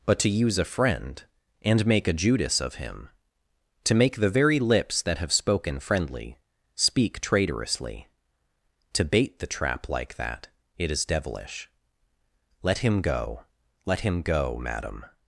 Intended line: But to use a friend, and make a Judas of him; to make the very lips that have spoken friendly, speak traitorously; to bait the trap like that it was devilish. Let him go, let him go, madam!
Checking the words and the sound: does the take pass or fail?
fail